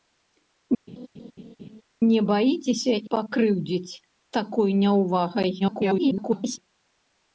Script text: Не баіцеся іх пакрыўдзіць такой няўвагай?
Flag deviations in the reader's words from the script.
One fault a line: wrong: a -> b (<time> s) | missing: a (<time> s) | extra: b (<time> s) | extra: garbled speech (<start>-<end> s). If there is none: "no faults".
missing: іх (2.9 s)
extra: garbled speech (5.6-6.6 s)